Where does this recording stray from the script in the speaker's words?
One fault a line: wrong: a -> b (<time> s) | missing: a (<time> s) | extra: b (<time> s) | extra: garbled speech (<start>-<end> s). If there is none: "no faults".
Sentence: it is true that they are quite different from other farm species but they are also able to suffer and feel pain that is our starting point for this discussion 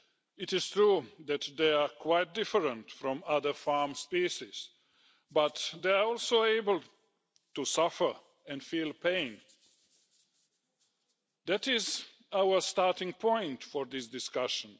no faults